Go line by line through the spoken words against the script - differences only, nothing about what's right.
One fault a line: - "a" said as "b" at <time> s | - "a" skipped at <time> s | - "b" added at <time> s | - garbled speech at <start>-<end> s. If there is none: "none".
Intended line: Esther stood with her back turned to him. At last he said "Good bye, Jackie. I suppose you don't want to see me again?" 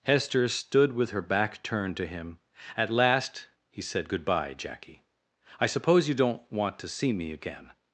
- "Esther" said as "Hester" at 0.0 s